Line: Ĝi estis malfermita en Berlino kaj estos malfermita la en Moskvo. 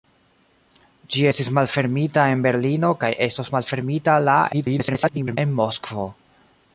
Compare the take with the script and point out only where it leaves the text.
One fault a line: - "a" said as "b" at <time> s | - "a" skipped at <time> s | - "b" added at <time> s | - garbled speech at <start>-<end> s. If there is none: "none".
- garbled speech at 4.5-5.4 s